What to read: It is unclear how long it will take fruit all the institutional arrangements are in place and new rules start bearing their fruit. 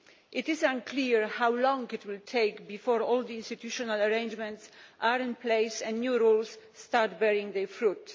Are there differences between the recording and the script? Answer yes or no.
yes